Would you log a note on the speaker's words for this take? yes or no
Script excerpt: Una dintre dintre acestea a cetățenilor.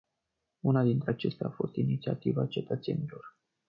yes